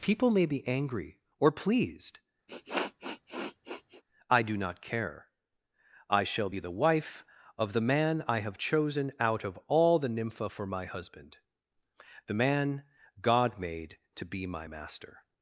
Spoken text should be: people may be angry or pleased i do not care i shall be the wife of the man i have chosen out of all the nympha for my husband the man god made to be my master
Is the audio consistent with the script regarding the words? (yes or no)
yes